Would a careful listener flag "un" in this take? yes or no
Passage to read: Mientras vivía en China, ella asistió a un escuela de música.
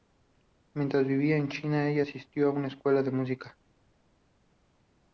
yes